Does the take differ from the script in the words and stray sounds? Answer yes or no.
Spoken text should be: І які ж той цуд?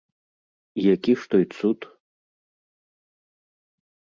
no